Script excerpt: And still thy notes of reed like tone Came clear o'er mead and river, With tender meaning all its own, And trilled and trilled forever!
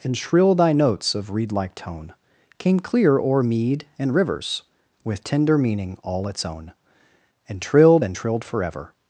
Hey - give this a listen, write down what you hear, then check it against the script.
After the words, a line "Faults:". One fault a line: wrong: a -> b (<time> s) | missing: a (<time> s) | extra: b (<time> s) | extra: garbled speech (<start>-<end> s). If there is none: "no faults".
And shrill thy notes of reed like tone Came clear o'er mead and rivers, With tender meaning all its own, And trilled and trilled forever!
Faults:
wrong: still -> shrill (0.2 s)
wrong: river -> rivers (4.1 s)